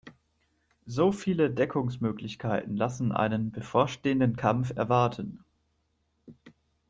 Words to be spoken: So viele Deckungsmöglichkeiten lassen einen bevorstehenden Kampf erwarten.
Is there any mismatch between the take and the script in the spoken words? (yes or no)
no